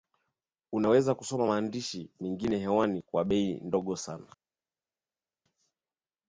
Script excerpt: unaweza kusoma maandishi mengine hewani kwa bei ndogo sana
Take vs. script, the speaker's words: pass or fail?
pass